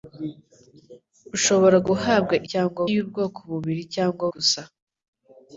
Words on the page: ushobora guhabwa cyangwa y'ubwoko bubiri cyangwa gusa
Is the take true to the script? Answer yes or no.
yes